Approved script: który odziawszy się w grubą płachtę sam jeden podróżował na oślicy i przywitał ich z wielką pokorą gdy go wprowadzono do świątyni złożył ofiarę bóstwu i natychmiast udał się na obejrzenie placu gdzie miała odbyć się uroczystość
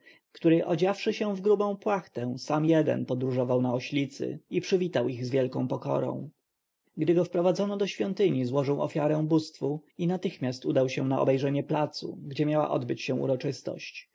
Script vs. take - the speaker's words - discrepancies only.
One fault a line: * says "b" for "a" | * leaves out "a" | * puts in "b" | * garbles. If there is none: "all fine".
all fine